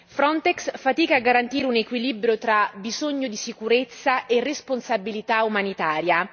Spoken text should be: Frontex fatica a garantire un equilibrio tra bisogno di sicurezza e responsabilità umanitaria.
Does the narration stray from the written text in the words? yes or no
no